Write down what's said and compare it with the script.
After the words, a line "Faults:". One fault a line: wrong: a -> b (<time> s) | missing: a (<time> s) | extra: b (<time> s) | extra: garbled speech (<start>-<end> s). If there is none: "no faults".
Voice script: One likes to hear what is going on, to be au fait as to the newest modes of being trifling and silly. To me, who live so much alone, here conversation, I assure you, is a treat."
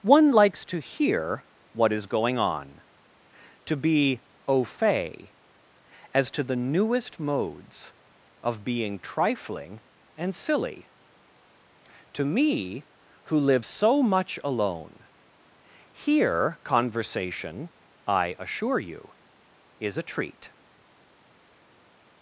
One likes to hear what is going on, to be au fait as to the newest modes of being trifling and silly. To me, who live so much alone, here conversation, I assure you, is a treat."
Faults:
no faults